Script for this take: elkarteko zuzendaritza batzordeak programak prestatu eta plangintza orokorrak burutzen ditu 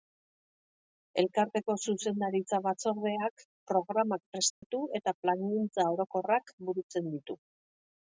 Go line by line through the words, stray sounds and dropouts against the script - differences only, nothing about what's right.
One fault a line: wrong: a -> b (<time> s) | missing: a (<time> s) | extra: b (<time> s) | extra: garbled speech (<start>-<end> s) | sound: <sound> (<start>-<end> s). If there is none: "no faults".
sound: dropout (4.5-4.6 s)